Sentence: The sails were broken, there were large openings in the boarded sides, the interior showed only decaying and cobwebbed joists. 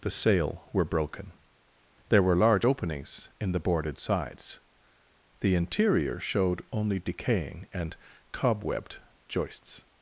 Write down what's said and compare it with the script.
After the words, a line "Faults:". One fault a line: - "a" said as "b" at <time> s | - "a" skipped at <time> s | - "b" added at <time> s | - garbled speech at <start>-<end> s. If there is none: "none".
The sail were broken, there were large openings in the boarded sides, the interior showed only decaying and cobwebbed joists.
Faults:
- "sails" said as "sail" at 0.1 s